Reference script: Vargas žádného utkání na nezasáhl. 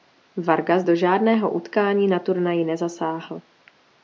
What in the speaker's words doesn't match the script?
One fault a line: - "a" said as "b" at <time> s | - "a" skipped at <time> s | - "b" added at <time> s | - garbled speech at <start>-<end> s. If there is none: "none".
- "do" added at 0.8 s
- "turnaji" added at 2.2 s